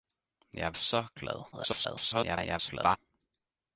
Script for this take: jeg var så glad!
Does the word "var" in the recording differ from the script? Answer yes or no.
yes